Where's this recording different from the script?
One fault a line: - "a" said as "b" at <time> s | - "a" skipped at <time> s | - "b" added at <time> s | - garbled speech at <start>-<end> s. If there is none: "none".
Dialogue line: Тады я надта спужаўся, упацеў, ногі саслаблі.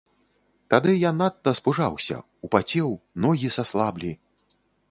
none